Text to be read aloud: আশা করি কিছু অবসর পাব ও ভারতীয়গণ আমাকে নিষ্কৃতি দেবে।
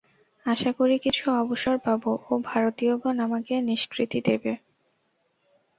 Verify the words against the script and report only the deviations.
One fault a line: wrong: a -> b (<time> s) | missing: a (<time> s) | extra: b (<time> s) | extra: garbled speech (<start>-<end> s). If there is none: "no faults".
no faults